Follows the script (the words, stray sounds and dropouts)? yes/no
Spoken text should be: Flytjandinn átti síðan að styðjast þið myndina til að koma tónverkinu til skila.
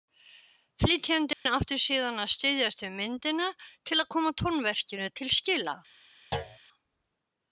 no